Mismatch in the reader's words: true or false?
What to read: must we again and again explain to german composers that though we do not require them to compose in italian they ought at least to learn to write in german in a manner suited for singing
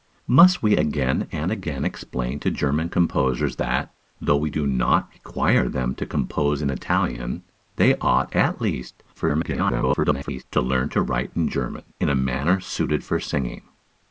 true